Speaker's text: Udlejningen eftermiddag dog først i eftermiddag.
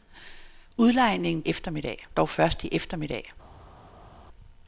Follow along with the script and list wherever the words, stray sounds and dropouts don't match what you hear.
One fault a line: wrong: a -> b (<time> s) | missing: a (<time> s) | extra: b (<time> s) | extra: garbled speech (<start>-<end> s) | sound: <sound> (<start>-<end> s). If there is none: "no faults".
no faults